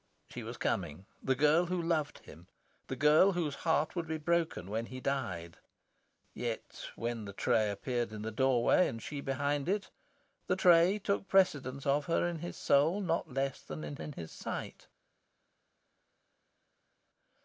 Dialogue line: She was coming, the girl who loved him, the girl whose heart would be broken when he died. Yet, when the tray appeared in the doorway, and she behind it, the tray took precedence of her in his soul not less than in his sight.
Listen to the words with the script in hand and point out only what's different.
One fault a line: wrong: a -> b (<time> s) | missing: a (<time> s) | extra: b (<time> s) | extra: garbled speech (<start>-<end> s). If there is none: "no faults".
extra: in (14.0 s)